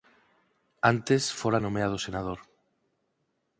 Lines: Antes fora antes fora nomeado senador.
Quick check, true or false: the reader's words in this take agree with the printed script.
false